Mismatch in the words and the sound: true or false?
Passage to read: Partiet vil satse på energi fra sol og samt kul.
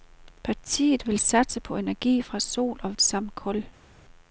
false